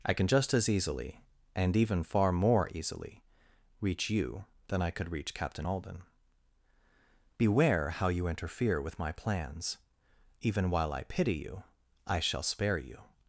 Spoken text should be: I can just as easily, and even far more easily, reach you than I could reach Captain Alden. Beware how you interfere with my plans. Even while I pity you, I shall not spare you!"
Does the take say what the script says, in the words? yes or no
no